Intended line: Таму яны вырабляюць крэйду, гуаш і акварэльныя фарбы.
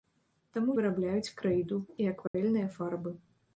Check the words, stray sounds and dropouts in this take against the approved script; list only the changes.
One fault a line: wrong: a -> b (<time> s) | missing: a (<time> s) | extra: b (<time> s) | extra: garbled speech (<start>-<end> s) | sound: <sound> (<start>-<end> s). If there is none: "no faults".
missing: яны (0.8 s)
missing: гуаш (1.8 s)
sound: dropout (2.3-2.3 s)